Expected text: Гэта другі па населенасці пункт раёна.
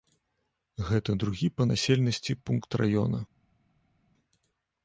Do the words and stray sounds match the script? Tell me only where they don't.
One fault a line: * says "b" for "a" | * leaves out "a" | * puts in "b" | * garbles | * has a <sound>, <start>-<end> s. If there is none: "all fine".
all fine